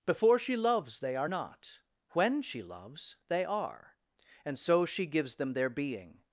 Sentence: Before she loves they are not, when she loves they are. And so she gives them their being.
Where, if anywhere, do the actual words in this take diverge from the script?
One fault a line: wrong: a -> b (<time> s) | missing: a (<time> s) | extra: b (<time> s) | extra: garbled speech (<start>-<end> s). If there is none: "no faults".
no faults